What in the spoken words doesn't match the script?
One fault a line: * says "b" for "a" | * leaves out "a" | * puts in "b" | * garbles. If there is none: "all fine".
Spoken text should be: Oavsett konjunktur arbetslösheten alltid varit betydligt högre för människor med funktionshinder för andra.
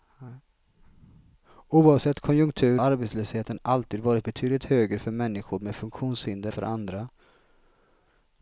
all fine